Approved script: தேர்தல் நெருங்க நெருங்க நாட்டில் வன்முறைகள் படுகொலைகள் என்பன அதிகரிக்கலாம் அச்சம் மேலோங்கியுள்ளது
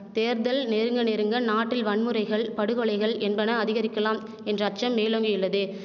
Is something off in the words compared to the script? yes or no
yes